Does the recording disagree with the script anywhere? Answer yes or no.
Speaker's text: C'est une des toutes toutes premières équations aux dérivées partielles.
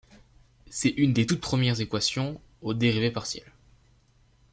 yes